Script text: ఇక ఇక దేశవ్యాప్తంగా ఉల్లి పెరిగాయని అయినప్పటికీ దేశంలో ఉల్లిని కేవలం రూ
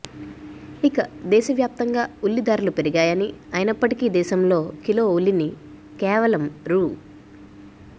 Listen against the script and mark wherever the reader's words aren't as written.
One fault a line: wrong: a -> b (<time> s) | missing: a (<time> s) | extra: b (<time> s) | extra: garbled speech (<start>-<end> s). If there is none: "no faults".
missing: ఇక (1.0 s)
extra: ధరలు (2.4 s)
extra: కిలో (4.8 s)